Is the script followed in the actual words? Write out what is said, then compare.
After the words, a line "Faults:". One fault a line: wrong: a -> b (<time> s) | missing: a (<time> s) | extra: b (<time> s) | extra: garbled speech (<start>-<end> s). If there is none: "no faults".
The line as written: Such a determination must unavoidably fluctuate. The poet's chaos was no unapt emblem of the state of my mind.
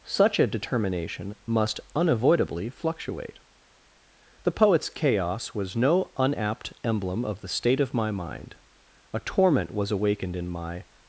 Such a determination must unavoidably fluctuate. The poet's chaos was no unapt emblem of the state of my mind. A torment was awakened in my
Faults:
extra: A torment was awakened in my (9.1 s)